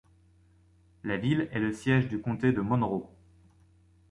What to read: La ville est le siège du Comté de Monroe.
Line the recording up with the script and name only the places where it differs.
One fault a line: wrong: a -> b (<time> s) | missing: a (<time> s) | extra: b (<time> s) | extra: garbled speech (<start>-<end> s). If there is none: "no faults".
no faults